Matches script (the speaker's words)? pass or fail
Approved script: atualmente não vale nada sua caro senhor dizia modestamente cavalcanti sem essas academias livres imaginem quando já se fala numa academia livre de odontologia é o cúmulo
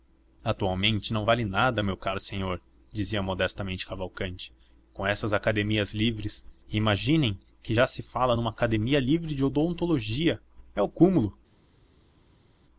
fail